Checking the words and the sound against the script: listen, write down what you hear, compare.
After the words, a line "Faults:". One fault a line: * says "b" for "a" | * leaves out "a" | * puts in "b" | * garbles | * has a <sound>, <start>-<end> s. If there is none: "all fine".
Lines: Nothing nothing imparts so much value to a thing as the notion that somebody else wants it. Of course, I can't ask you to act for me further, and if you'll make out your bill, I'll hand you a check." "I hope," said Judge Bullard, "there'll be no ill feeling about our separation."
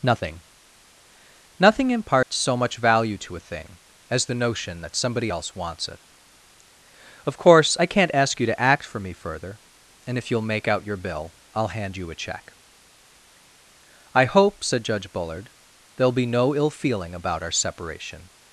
Nothing nothing imparts so much value to a thing as the notion that somebody else wants it. Of course, I can't ask you to act for me further, and if you'll make out your bill, I'll hand you a check." "I hope," said Judge Bullard, "there'll be no ill feeling about our separation."
Faults:
* has a dropout, 2.2-2.3 s